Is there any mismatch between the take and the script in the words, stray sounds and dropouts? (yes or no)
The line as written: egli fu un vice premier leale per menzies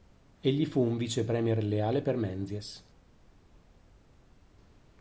no